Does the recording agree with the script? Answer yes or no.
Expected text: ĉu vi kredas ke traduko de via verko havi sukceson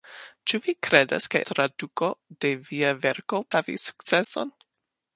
yes